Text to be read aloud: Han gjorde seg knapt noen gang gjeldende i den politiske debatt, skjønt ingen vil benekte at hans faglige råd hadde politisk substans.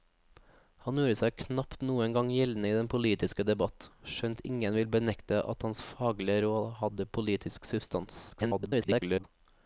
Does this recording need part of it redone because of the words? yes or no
yes